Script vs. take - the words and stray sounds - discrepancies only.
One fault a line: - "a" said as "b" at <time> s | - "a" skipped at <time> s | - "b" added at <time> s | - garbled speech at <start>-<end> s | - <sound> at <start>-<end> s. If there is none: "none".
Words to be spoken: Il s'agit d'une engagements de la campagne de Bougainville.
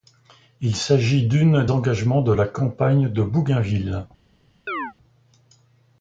- chirp at 4.7-4.9 s